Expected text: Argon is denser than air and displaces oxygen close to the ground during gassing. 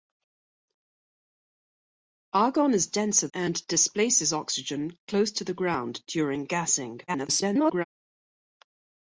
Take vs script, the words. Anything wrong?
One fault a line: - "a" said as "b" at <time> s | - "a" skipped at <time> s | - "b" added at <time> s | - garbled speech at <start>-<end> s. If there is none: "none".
- "than air" skipped at 3.3 s
- garbled speech at 7.1-7.8 s